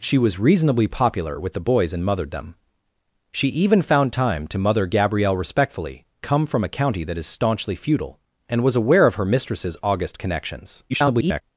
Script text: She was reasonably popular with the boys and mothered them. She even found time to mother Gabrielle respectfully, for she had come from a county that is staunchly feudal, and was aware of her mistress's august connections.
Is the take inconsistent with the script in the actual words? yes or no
yes